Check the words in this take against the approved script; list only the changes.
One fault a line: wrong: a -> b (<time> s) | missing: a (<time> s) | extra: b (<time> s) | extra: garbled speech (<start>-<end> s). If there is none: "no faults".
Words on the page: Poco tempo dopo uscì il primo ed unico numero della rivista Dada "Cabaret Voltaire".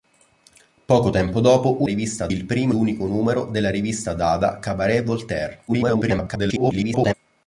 wrong: uscì -> rivista (1.8 s)
missing: ed (2.7 s)
extra: garbled speech (5.7-7.1 s)